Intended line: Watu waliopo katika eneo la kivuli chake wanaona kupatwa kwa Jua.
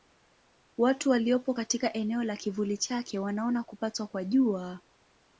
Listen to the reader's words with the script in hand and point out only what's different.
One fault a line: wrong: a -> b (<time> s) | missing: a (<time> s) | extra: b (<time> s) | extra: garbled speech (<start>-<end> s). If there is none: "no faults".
no faults